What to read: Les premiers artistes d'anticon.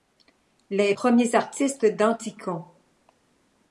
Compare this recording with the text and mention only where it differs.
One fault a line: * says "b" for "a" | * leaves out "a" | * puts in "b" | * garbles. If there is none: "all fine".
all fine